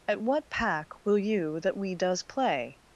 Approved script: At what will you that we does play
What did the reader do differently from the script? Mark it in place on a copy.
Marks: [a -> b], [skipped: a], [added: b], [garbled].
At what [added: pack] will you that we does play